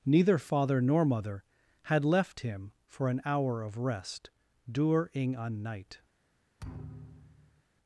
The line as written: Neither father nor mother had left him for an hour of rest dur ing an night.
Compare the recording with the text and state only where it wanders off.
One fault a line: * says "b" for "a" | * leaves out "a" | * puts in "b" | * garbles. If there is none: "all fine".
all fine